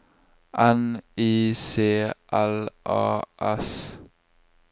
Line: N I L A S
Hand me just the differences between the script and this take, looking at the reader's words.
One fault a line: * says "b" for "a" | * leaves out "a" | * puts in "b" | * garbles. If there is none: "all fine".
* puts in "C"